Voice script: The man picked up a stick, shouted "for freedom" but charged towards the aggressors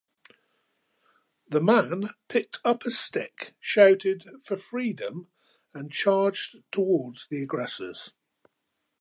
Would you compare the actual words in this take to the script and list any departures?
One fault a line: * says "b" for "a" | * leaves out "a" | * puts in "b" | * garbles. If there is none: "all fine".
* says "and" for "but"